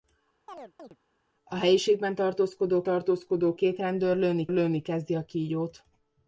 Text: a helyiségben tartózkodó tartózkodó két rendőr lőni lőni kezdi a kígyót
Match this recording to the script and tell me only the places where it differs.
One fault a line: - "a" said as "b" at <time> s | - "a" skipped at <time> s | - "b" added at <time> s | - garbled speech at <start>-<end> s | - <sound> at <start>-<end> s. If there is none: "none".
- chirp at 0.5-1.0 s